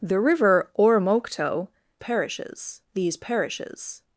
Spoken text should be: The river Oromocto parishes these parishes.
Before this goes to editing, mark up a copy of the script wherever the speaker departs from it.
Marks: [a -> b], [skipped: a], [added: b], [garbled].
The river Oromocto parishes these parishes.